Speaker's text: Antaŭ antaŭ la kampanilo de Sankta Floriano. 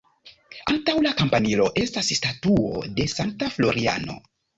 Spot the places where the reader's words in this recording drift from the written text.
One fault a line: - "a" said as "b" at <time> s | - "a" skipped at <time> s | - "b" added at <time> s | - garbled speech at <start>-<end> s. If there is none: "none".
- "antaŭ" skipped at 0.9 s
- "estas statuo" added at 1.8 s